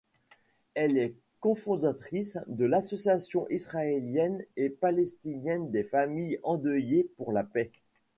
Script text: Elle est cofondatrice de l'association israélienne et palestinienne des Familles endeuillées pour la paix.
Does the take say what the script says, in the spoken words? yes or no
yes